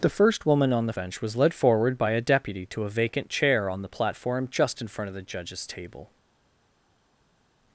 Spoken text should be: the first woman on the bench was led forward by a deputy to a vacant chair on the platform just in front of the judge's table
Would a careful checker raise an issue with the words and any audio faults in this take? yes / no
no